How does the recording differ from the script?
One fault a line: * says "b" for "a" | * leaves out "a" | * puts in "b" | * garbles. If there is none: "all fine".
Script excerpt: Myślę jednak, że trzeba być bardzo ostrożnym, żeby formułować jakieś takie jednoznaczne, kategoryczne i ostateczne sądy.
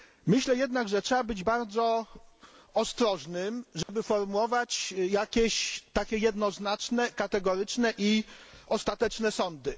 all fine